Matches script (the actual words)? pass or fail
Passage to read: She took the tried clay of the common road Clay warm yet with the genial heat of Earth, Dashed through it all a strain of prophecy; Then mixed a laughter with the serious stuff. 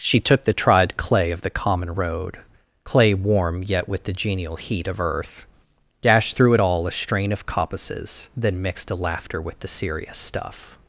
fail